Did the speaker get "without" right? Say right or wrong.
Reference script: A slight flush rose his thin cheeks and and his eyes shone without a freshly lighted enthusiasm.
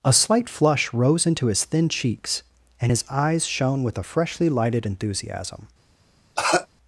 wrong